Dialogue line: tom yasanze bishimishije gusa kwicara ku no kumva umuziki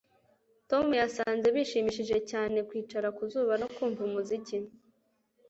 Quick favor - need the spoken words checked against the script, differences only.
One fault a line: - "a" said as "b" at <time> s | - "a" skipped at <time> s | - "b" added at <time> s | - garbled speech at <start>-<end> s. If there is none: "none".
- "gusa" said as "cyane" at 2.3 s
- "zuba" added at 3.3 s